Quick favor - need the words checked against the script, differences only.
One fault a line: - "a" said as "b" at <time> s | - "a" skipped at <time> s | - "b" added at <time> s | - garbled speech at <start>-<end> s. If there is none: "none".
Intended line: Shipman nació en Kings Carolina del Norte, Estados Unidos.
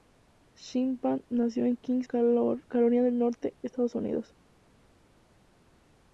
none